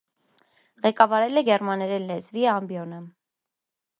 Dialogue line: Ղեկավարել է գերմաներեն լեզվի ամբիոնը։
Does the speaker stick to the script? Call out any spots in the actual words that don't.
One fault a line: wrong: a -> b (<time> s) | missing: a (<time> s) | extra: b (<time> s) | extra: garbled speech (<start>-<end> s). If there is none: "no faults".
no faults